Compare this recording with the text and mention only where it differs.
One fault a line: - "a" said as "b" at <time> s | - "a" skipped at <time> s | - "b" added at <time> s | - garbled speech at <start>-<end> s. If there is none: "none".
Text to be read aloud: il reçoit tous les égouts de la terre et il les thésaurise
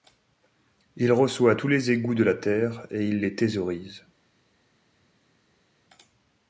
none